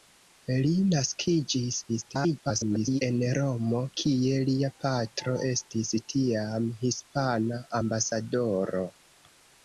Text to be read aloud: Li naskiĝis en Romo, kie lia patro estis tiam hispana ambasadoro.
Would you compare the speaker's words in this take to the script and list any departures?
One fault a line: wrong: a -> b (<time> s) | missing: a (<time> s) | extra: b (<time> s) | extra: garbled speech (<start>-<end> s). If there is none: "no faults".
extra: garbled speech (1.9-3.0 s)